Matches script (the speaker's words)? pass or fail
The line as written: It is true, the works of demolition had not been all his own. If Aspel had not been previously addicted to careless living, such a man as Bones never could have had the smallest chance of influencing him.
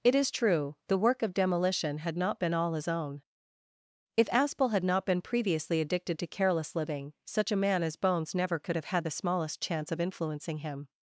fail